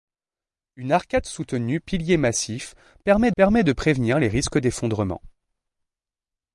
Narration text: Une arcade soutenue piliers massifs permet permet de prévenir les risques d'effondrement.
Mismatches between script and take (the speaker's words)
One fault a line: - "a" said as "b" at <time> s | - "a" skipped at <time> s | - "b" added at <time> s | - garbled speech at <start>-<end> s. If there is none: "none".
none